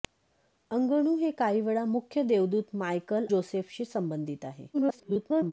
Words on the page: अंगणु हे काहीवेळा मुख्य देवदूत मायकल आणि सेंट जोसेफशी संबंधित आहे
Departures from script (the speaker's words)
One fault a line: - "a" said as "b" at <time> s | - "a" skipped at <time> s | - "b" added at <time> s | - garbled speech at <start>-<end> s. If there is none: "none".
- "आणि सेंट" skipped at 3.2 s
- garbled speech at 4.7-5.5 s